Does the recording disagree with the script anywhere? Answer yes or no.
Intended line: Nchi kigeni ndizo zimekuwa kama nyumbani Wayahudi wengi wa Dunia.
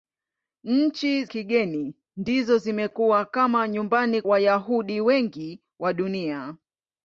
no